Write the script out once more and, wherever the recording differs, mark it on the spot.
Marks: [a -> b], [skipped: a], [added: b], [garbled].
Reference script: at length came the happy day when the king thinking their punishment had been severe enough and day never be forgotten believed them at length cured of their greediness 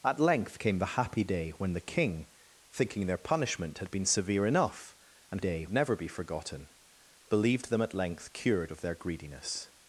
at length came the happy day when the king thinking their punishment had been severe enough and day never be forgotten believed them at length cured of their greediness